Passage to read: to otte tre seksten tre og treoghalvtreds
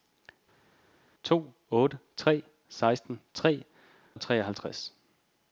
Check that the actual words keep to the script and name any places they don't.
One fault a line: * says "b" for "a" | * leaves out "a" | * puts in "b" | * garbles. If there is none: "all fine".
all fine